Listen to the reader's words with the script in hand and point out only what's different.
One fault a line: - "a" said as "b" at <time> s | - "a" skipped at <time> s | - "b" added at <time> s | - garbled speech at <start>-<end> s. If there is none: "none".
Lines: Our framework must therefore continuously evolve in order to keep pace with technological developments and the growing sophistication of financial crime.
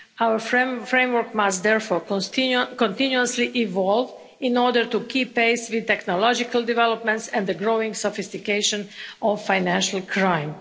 none